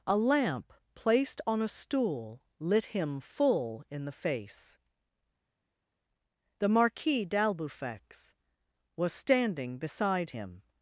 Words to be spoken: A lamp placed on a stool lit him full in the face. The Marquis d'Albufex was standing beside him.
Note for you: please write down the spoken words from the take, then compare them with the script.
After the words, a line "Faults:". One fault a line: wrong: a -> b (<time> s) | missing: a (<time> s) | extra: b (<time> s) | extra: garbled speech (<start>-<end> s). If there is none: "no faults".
A lamp placed on a stool lit him full in the face. The Marquis d'Albufex was standing beside him.
Faults:
no faults